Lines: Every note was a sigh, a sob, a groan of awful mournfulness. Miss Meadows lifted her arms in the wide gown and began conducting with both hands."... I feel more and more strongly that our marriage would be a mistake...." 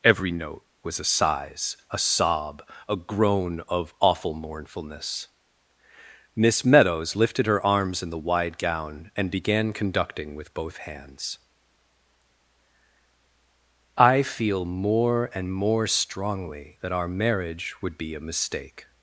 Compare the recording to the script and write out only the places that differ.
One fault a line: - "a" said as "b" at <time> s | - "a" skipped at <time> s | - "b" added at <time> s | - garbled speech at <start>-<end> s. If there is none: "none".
- "sigh" said as "sighs" at 1.0 s